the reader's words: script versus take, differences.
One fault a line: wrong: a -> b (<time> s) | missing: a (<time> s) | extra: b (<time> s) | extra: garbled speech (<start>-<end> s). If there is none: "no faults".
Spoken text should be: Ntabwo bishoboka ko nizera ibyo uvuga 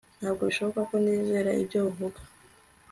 no faults